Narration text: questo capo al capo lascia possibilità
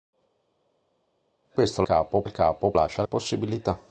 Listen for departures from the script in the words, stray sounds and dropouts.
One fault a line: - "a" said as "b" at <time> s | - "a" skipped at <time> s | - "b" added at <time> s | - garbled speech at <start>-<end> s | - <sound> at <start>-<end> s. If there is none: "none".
none